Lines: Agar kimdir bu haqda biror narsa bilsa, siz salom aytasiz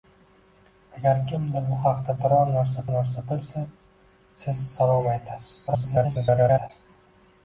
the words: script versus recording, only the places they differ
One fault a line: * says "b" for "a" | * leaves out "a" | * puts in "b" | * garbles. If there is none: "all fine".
* puts in "narsa"
* garbles